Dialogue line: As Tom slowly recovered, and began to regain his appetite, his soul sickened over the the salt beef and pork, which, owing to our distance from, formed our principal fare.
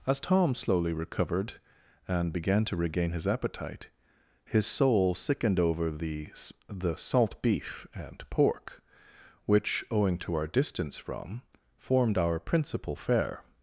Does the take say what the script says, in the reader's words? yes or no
yes